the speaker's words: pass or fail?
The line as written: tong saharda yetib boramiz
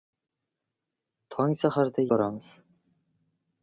fail